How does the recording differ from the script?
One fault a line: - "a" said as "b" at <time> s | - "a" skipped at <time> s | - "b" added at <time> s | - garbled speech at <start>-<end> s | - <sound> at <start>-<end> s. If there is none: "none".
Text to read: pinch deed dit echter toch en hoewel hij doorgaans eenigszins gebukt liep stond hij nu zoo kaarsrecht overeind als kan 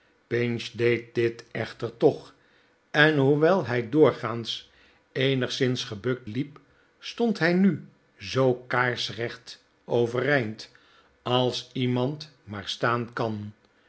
- "iemand maar staan" added at 11.7 s